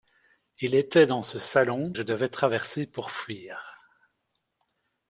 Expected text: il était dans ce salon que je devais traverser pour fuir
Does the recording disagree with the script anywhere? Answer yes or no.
yes